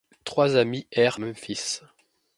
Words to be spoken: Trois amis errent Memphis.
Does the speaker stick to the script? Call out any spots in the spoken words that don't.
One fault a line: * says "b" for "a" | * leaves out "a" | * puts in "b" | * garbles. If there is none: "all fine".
all fine